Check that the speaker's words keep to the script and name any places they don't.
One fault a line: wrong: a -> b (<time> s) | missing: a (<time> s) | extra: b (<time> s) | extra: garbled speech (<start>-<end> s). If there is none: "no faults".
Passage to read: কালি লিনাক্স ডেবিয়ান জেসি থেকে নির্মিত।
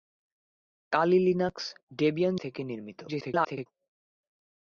missing: জেসি (2.4 s)
extra: garbled speech (3.1-3.7 s)